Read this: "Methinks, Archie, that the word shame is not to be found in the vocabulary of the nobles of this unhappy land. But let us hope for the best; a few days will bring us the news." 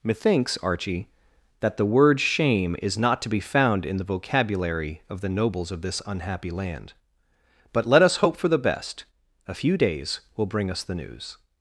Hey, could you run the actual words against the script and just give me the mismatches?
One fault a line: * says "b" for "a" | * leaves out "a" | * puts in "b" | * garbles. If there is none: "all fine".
all fine